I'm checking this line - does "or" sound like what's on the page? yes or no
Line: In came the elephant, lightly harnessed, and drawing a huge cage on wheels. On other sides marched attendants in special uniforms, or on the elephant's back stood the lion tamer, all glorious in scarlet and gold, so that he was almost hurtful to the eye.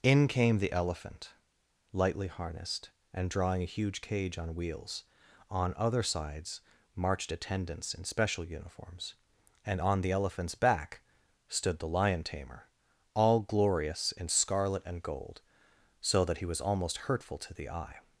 no